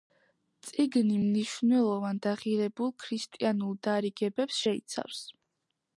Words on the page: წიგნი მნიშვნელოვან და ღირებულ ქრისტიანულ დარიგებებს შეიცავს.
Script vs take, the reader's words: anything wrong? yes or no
no